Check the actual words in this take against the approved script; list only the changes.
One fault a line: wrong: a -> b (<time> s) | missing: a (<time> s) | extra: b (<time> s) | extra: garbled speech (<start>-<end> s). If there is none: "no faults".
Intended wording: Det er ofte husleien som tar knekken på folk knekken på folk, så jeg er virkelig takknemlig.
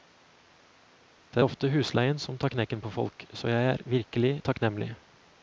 missing: knekken på folk (3.3 s)